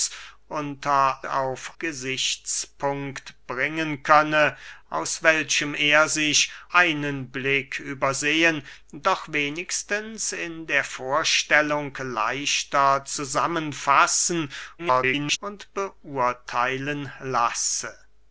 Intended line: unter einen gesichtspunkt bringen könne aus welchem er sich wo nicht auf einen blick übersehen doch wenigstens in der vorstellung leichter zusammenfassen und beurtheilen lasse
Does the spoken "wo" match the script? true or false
false